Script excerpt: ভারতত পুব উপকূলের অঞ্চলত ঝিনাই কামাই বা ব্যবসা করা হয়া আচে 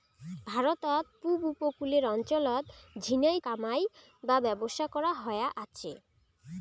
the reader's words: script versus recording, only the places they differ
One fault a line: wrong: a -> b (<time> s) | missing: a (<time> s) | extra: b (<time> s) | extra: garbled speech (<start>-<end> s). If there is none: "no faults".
no faults